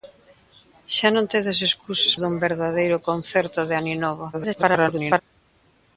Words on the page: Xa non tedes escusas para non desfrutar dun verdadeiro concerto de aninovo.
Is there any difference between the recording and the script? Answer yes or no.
yes